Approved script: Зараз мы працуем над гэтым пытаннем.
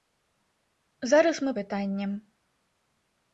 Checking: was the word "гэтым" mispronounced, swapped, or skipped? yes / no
yes